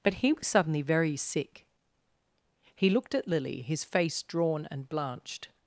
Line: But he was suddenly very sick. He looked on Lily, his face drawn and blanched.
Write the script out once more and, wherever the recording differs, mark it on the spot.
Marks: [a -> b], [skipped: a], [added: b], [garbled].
But he was suddenly very sick. He looked [on -> at] Lily, his face drawn and blanched.